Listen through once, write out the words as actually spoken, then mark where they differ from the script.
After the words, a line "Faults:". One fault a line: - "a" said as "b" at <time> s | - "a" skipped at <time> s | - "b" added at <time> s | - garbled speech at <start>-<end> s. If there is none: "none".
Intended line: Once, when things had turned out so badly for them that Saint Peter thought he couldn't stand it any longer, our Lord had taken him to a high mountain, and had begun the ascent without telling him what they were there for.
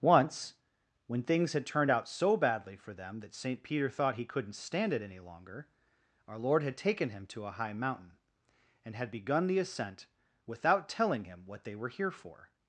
Once, when things had turned out so badly for them that Saint Peter thought he couldn't stand it any longer, our Lord had taken him to a high mountain, and had begun the ascent without telling him what they were here for.
Faults:
- "there" said as "here" at 11.9 s